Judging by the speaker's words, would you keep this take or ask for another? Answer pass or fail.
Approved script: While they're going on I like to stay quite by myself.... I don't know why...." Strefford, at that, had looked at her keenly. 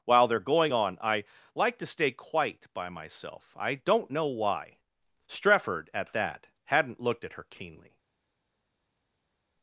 fail